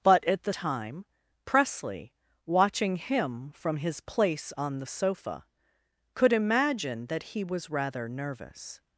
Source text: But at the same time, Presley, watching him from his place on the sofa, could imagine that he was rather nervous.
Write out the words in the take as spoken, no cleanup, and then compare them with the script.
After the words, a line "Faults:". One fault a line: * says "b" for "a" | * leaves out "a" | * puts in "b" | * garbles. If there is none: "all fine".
But at the time, Presley, watching him from his place on the sofa, could imagine that he was rather nervous.
Faults:
* leaves out "same"